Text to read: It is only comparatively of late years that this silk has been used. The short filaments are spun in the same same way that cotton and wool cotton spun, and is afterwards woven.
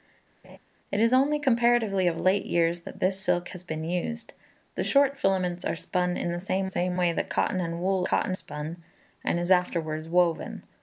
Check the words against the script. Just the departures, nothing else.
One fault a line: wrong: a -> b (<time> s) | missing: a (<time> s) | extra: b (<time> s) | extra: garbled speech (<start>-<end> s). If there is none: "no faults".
no faults